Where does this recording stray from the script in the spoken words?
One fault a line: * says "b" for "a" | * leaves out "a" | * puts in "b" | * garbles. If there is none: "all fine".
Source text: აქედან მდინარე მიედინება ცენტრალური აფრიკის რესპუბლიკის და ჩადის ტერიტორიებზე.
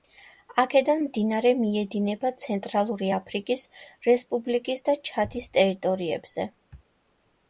all fine